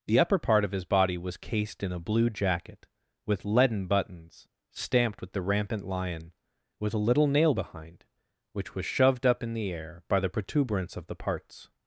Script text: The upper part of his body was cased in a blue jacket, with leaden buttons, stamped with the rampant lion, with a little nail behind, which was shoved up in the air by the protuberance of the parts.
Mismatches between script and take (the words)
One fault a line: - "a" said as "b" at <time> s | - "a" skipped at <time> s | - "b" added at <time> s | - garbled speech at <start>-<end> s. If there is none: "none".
none